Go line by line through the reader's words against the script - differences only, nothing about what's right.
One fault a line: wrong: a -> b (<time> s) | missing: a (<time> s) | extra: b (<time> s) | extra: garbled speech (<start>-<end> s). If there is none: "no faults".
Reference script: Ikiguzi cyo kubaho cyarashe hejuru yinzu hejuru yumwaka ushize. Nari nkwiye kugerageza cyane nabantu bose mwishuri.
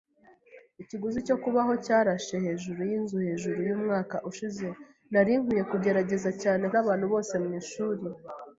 no faults